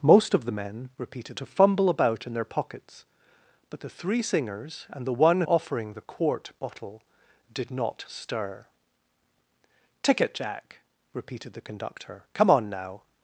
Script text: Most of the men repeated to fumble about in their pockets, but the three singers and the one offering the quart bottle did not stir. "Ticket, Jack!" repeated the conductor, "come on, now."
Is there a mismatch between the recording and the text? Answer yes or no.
no